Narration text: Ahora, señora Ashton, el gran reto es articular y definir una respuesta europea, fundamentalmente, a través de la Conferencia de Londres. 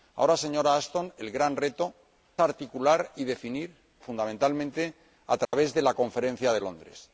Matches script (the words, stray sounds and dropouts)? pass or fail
fail